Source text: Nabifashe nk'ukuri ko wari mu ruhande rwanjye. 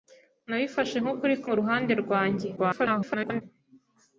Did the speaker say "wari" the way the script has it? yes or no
no